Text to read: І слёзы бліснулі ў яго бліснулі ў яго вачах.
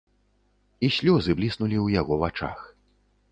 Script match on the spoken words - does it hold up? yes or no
no